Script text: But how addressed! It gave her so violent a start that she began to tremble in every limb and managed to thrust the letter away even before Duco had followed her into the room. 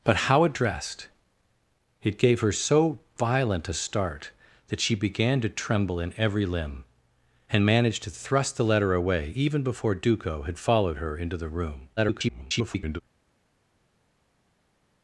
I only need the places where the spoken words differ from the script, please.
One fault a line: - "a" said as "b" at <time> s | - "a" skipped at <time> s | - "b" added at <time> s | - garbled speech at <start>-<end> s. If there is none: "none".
- garbled speech at 12.0-13.0 s